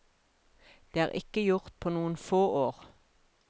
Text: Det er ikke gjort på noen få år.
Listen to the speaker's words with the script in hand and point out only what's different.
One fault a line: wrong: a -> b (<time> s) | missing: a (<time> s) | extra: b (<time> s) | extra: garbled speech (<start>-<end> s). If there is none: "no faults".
no faults